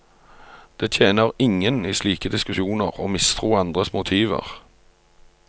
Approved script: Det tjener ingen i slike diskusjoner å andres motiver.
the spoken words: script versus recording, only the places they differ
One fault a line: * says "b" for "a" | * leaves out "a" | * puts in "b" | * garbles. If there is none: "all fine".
* puts in "mistro"